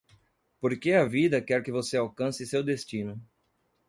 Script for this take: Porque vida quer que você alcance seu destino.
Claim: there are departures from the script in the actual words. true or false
true